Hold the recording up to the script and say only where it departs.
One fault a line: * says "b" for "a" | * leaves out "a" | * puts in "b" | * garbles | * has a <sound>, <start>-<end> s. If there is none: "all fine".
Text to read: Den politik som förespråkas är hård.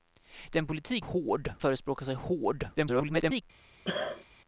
* says "hård" for "som"
* garbles
* has a cough, 3.8-4.2 s